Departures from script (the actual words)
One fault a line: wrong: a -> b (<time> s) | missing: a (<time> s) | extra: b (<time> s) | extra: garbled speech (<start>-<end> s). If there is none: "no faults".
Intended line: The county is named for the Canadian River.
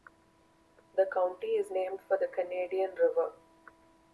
no faults